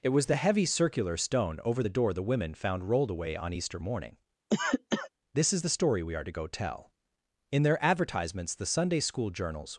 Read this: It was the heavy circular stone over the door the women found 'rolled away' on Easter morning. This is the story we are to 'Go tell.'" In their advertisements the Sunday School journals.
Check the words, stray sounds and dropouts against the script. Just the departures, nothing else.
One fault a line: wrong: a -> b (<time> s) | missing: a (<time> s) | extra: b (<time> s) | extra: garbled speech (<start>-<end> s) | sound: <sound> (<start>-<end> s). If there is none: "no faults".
sound: cough (4.5-5.1 s)